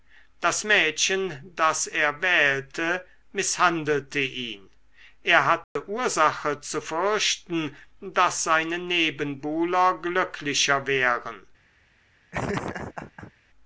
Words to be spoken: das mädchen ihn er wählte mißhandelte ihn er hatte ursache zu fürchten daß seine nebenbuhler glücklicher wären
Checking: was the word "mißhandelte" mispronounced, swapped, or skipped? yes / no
no